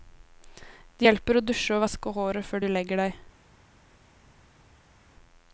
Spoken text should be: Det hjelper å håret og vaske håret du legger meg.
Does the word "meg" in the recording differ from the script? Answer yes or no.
yes